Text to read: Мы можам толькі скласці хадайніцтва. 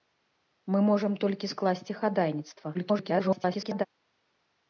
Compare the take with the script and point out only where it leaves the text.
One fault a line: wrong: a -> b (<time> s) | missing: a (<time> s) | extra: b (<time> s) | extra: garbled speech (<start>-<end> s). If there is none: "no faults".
extra: garbled speech (2.7-3.8 s)